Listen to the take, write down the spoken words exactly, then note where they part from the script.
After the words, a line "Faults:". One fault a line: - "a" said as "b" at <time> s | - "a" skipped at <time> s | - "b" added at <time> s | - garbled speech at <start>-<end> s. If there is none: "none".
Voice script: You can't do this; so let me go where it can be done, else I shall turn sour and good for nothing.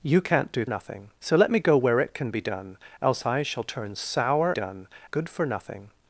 You can't do nothing; so let me go where it can be done, else I shall turn sour done good for nothing.
Faults:
- "this" said as "nothing" at 0.6 s
- "and" said as "done" at 4.5 s